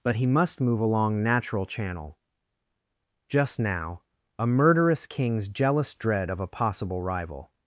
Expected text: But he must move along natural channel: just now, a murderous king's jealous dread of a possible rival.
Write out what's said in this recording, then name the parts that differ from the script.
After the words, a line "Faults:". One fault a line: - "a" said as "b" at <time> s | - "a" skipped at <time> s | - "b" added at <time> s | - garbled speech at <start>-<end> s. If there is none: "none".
But he must move along natural channel: just now, a murderous king's jealous dread of a possible rival.
Faults:
none